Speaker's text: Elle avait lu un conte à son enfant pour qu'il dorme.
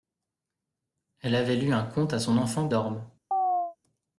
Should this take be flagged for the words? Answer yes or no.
yes